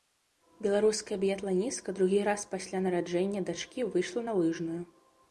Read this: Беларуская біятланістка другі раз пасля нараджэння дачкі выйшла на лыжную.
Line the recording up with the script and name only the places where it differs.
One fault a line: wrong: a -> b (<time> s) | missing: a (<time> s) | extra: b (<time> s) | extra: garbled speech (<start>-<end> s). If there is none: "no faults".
no faults